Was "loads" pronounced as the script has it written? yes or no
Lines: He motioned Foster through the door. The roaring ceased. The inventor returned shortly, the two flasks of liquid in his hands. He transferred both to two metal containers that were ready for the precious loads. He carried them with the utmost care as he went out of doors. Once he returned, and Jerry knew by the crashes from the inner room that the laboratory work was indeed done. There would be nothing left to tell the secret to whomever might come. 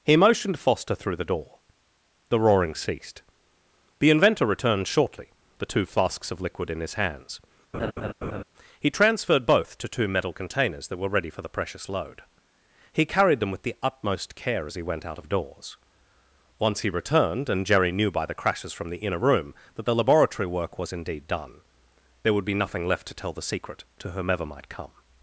no